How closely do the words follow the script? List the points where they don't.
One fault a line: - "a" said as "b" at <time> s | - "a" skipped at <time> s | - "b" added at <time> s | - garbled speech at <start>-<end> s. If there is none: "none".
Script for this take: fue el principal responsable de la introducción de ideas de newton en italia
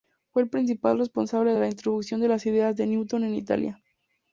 - "las" added at 2.3 s